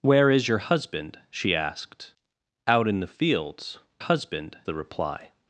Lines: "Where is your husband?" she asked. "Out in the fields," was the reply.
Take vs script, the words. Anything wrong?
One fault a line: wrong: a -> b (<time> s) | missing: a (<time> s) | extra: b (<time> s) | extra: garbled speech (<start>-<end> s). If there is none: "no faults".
wrong: was -> husband (4.0 s)